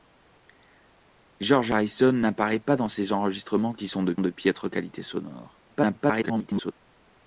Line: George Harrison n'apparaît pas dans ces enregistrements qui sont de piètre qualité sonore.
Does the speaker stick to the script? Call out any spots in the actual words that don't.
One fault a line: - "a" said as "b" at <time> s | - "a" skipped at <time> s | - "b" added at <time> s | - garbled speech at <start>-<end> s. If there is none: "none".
- "de" added at 4.2 s
- garbled speech at 5.7-6.7 s